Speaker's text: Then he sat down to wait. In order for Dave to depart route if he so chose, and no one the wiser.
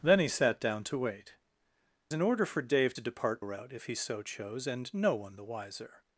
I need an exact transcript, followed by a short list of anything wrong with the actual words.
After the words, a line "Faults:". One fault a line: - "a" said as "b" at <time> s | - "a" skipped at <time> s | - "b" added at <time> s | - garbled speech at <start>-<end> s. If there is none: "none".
Then he sat down to wait. In order for Dave to depart route if he so chose, and no one the wiser.
Faults:
none